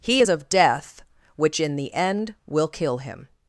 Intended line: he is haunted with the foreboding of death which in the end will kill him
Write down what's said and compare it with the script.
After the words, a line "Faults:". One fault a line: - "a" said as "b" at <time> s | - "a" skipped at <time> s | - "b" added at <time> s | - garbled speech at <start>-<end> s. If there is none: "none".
he is of death which in the end will kill him
Faults:
- "haunted with the foreboding" skipped at 0.3 s